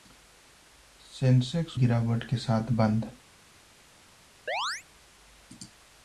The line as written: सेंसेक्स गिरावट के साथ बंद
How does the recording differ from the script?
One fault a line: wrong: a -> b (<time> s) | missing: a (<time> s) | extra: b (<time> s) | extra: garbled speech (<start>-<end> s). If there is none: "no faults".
no faults